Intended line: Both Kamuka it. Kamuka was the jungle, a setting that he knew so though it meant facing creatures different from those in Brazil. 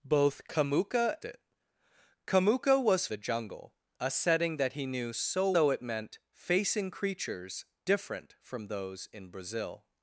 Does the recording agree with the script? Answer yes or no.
yes